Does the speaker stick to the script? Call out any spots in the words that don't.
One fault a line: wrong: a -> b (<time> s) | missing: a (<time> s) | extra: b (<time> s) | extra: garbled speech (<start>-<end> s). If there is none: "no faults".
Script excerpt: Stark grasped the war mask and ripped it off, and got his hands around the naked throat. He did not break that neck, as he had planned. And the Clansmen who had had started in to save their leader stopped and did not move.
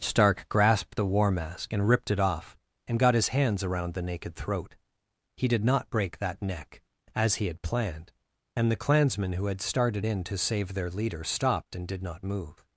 missing: had (9.6 s)